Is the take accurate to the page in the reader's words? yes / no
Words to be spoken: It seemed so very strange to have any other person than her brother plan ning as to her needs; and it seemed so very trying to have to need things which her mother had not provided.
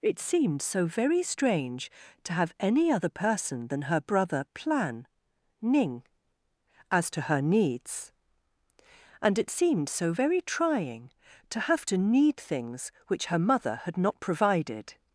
yes